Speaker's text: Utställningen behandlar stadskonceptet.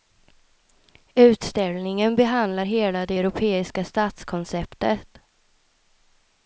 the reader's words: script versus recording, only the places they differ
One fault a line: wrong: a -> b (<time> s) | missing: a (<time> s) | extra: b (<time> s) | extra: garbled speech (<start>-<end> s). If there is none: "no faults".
extra: hela det europeiska (2.6 s)